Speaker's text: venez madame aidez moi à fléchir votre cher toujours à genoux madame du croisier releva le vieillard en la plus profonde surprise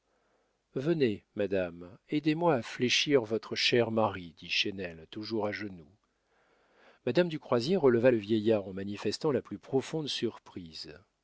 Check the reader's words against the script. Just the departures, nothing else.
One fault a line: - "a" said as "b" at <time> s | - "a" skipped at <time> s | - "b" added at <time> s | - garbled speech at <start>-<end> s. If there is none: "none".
- "mari dit chesnel" added at 3.9 s
- "manifestant" added at 8.7 s